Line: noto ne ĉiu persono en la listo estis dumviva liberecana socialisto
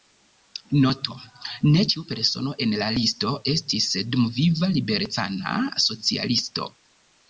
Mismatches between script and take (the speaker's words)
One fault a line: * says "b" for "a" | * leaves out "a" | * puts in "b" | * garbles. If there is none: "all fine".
all fine